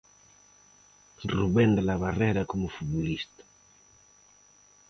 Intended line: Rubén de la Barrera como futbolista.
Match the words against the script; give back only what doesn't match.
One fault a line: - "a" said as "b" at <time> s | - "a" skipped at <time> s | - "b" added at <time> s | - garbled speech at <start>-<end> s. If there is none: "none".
none